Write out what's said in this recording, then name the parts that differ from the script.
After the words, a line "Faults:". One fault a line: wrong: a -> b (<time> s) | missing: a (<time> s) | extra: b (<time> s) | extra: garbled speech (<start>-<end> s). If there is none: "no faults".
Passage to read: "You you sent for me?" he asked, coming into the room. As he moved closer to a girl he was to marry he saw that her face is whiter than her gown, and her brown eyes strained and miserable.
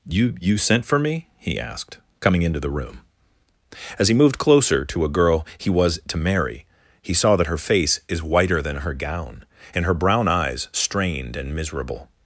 "You you sent for me?" he asked, coming into the room. As he moved closer to a girl he was to marry he saw that her face is whiter than her gown, and her brown eyes strained and miserable.
Faults:
no faults